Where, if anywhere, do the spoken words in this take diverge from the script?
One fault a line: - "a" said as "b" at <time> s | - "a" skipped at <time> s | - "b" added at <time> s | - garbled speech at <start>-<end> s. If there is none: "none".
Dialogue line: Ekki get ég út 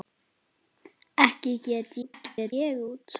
- garbled speech at 2.0-2.5 s